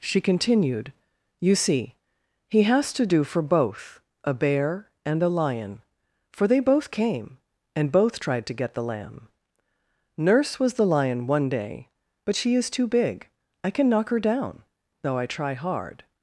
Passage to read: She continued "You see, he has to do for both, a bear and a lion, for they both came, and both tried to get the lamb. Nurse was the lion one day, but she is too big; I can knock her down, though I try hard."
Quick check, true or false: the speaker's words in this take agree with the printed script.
true